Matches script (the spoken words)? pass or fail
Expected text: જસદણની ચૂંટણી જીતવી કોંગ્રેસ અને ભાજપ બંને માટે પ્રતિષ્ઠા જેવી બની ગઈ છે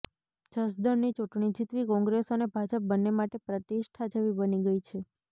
pass